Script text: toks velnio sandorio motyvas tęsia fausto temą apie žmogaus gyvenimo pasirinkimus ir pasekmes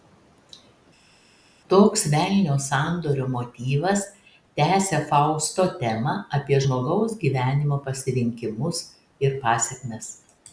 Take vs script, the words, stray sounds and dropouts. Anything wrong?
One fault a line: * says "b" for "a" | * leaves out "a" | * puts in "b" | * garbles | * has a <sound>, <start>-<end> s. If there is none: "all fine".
all fine